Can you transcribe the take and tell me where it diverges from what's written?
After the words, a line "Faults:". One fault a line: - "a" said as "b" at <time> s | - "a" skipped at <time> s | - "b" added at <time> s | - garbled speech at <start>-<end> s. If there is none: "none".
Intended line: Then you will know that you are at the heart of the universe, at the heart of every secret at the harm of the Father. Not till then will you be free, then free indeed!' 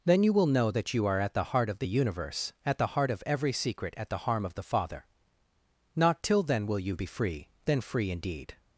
Then you will know that you are at the heart of the universe, at the heart of every secret at the harm of the Father. Not till then will you be free, then free indeed!'
Faults:
none